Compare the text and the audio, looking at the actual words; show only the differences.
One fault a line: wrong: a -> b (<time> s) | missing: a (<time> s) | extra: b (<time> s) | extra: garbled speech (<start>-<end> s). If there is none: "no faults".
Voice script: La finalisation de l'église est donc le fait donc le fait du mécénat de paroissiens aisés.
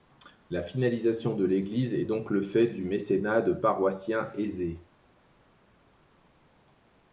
missing: donc le fait (2.7 s)